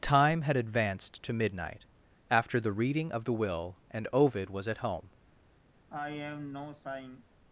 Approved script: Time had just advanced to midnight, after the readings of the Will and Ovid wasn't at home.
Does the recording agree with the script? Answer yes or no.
no